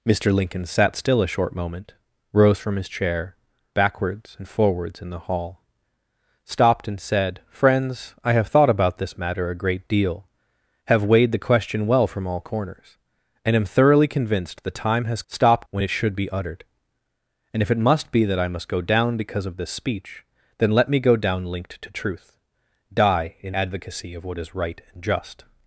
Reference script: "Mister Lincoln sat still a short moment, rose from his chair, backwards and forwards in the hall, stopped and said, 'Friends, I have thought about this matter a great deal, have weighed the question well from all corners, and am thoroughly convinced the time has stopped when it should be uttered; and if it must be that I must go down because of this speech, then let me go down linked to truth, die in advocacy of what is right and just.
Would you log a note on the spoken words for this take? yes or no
no